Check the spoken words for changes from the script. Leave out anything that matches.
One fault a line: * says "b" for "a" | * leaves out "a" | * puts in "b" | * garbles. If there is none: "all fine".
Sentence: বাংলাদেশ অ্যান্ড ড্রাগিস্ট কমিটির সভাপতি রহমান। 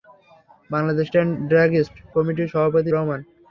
all fine